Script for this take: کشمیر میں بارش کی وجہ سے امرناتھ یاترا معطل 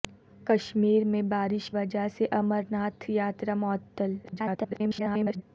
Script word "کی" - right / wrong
wrong